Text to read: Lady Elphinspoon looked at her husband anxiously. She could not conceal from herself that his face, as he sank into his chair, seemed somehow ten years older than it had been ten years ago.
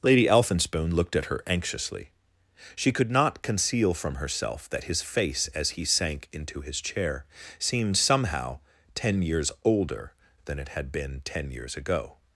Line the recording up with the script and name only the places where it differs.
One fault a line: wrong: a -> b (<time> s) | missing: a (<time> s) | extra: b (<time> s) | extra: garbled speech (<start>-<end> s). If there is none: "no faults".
missing: husband (1.4 s)